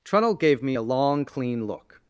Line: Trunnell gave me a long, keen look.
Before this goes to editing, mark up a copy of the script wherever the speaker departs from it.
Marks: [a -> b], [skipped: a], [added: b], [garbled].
Trunnell gave me a long, [keen -> clean] look.